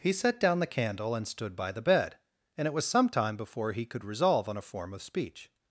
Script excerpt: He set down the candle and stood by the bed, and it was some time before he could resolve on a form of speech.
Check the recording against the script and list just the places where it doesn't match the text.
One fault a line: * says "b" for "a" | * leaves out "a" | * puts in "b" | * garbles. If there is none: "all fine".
all fine